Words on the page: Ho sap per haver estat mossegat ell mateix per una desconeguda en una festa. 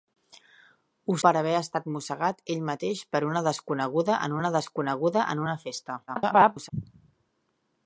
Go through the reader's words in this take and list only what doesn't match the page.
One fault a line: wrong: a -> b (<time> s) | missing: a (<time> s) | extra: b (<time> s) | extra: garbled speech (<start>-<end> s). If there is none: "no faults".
missing: sap (1.2 s)
extra: desconeguda en una (4.6 s)
extra: garbled speech (6.1-6.7 s)